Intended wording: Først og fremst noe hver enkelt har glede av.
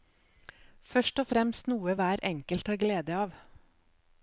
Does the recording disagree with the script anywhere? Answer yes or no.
no